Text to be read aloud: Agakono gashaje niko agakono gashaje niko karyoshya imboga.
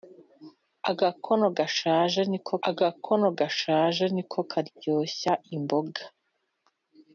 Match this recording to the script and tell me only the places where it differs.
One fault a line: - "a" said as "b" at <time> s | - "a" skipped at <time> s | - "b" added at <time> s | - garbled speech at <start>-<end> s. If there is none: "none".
none